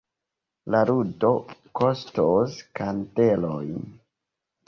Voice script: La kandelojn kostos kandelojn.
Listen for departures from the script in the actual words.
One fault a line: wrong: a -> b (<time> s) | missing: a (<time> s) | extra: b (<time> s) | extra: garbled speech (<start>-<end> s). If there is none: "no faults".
wrong: kandelojn -> ludo (0.9 s)